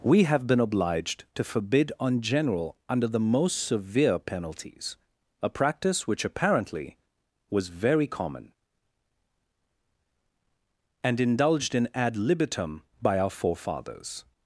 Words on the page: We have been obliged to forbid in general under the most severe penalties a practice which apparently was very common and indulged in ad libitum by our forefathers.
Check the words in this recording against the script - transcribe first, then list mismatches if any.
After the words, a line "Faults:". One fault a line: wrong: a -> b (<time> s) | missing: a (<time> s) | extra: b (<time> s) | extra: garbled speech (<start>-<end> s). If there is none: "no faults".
We have been obliged to forbid on general under the most severe penalties a practice which apparently was very common and indulged in ad libitum by our forefathers.
Faults:
wrong: in -> on (2.0 s)